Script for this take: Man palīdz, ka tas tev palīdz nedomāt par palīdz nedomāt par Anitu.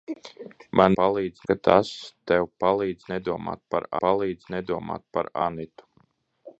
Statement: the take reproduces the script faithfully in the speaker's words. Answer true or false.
true